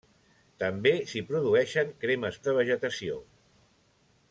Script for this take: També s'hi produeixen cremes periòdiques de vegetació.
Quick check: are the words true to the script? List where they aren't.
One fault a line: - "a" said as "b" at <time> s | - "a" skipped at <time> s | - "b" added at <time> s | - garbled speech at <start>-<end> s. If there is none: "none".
- "periòdiques" skipped at 2.4 s